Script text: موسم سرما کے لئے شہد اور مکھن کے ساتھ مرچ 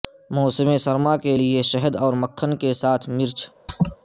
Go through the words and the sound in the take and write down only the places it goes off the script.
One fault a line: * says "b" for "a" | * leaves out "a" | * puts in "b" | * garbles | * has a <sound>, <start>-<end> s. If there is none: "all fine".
* has a laugh, 3.7-4.0 s